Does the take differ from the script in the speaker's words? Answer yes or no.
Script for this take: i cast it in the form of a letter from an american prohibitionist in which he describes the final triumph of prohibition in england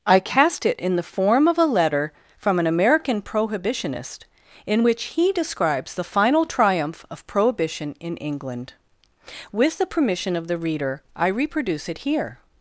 yes